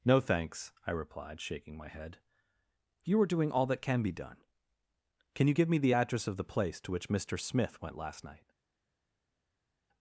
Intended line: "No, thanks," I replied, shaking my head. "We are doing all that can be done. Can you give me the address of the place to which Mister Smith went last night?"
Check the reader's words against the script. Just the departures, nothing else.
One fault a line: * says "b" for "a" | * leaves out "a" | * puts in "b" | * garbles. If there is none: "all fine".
* says "You" for "We"